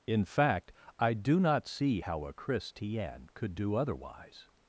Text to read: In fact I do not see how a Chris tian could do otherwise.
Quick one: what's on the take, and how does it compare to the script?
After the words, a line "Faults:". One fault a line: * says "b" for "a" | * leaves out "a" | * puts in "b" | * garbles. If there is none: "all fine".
In fact I do not see how a Chris tian could do otherwise.
Faults:
all fine